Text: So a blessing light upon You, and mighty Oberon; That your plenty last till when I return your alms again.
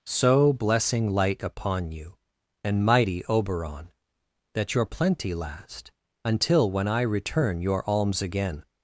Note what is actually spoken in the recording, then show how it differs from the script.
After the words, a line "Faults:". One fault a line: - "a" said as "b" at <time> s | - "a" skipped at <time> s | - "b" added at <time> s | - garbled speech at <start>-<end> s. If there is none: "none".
So blessing light upon You, and mighty Oberon; That your plenty last until when I return your alms again.
Faults:
- "a" skipped at 0.5 s
- "till" said as "until" at 6.2 s